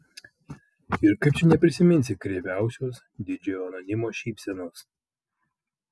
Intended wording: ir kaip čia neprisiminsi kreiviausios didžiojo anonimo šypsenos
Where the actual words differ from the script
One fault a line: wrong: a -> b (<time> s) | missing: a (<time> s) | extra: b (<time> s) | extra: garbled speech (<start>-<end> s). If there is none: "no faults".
no faults